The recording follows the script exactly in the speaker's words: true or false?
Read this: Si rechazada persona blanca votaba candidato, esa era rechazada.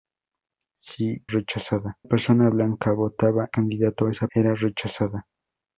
true